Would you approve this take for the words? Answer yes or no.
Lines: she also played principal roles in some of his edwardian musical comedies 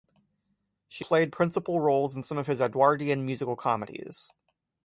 no